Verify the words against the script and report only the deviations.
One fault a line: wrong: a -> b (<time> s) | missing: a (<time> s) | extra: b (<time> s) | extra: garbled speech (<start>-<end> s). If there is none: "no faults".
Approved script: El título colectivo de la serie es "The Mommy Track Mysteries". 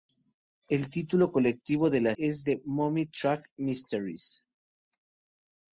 missing: serie (2.1 s)